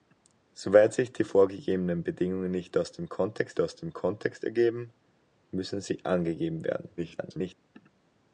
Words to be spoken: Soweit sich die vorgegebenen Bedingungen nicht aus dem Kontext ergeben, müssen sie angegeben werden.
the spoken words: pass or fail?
fail